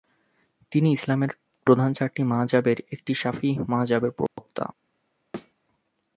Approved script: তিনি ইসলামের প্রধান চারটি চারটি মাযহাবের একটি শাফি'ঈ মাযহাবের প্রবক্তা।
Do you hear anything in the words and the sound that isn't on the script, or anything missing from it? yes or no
yes